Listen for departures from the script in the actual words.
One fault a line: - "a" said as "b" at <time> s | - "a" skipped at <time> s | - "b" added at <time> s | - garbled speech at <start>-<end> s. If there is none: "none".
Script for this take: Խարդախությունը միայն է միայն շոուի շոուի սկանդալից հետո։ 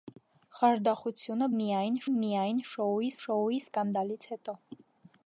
none